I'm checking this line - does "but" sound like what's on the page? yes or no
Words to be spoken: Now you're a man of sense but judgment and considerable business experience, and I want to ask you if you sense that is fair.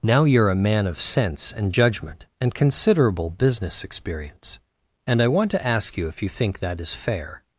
no